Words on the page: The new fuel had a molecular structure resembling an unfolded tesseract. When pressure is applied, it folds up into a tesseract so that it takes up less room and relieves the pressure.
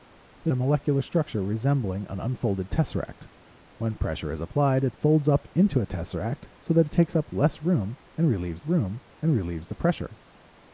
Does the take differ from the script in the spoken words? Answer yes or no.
yes